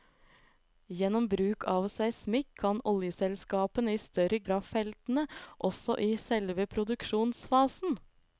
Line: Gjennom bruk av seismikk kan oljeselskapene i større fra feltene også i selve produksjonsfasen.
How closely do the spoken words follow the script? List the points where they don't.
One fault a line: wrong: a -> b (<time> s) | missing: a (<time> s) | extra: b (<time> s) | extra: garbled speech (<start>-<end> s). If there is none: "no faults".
no faults